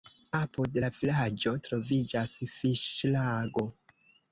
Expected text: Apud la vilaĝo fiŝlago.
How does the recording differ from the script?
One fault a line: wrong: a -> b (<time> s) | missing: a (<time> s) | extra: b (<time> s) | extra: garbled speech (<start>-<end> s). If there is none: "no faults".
extra: troviĝas (1.7 s)